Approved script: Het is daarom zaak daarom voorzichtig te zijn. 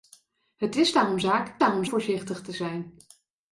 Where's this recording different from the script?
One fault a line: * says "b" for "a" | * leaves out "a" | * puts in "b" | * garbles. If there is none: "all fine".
all fine